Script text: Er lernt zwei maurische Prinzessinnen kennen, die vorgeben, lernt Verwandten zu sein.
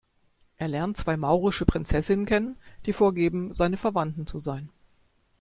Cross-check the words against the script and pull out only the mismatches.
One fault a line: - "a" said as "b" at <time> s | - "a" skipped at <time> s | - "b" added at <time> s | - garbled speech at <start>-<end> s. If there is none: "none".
- "lernt" said as "seine" at 3.5 s